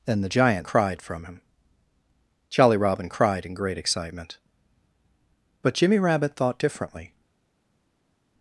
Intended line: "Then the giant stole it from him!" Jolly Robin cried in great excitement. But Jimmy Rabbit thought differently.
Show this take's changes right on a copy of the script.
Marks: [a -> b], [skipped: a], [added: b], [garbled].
"Then the giant [stole -> cried] it from him!" Jolly Robin cried in great excitement. But Jimmy Rabbit thought differently.